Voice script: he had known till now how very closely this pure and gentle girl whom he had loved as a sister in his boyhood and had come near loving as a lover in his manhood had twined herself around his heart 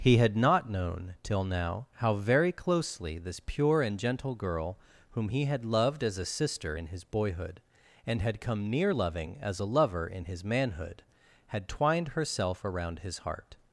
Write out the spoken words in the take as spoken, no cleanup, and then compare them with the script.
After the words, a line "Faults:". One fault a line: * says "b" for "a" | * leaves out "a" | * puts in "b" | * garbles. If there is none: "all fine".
he had not known till now how very closely this pure and gentle girl whom he had loved as a sister in his boyhood and had come near loving as a lover in his manhood had twined herself around his heart
Faults:
* puts in "not"